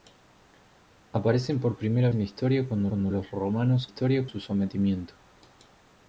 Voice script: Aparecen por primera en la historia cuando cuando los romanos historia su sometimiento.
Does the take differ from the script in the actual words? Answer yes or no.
no